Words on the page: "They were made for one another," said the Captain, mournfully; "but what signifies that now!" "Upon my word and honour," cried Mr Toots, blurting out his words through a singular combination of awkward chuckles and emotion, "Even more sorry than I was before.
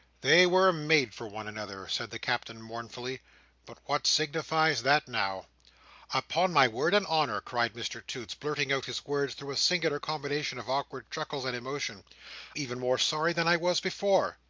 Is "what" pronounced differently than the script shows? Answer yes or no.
no